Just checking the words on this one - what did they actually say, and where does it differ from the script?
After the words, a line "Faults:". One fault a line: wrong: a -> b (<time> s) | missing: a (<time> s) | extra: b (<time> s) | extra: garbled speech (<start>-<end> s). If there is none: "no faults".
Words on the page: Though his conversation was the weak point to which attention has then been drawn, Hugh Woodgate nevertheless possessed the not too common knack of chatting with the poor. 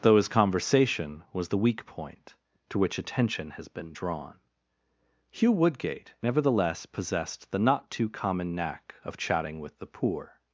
Though his conversation was the weak point to which attention has been drawn, Hugh Woodgate nevertheless possessed the not too common knack of chatting with the poor.
Faults:
missing: then (3.7 s)